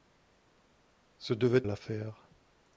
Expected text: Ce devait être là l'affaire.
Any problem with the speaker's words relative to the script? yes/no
yes